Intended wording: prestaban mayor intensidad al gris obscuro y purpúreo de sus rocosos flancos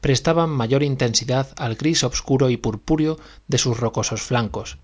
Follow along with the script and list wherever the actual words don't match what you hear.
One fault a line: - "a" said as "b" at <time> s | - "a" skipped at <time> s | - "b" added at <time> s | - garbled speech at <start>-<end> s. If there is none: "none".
none